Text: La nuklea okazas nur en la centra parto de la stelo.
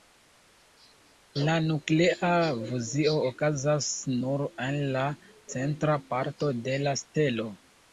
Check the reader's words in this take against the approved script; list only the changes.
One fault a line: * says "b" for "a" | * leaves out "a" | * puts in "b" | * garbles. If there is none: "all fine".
* puts in "fuzio"